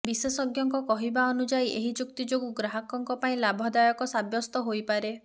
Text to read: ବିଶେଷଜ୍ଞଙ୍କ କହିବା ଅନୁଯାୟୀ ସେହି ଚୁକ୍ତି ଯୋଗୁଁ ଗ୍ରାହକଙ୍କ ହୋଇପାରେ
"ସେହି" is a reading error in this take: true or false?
true